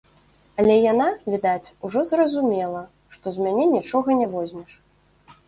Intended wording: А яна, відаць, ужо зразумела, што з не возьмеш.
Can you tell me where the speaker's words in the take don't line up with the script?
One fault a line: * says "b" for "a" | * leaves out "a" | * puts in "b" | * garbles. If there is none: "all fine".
* says "Але" for "А"
* puts in "мяне нічога"